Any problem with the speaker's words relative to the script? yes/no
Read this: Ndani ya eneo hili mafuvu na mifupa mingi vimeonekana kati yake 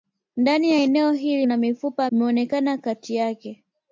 yes